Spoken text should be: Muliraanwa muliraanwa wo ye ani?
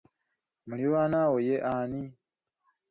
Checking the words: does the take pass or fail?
fail